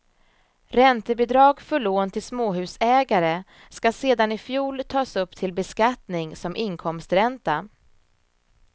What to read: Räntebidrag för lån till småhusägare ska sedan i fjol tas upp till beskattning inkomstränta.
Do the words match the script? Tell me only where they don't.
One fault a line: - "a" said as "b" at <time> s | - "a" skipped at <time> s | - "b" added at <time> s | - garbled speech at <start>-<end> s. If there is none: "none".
- "som" added at 6.3 s